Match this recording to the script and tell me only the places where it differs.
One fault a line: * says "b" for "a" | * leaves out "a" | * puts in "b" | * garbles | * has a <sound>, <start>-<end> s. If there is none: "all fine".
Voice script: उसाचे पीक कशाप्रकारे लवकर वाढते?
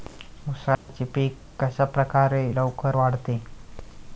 * has a dropout, 0.7-0.9 s